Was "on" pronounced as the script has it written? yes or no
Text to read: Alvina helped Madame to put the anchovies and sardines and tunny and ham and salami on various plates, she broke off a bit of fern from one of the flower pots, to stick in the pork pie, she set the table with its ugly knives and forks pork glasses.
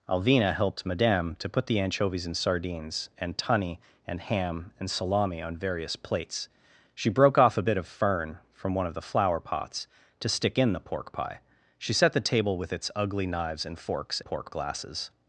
yes